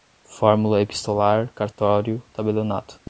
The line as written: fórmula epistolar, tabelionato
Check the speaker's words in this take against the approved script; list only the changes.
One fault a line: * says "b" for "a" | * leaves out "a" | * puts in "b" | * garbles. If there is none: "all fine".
* puts in "cartório"